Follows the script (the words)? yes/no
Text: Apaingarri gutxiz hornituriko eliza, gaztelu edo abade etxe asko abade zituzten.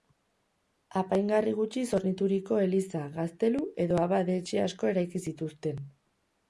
no